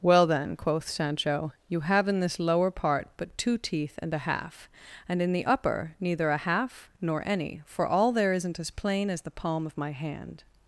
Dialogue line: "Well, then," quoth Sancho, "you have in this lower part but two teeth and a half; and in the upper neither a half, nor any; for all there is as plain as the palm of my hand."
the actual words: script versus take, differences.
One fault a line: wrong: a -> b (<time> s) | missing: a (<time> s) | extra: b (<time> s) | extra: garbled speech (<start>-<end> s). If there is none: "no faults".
wrong: is -> isn't (8.3 s)